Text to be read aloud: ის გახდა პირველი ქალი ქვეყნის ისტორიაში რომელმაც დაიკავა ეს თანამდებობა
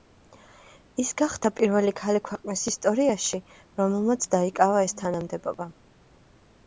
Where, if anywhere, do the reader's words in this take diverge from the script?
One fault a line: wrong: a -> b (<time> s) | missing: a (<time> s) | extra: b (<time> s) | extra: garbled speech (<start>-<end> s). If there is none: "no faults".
no faults